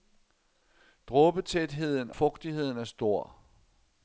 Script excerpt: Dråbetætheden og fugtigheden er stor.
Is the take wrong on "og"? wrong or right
wrong